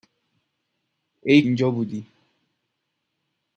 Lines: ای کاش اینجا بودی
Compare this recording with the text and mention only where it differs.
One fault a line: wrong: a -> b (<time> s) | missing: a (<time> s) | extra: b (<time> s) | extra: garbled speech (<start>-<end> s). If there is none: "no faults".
missing: کاش (1.4 s)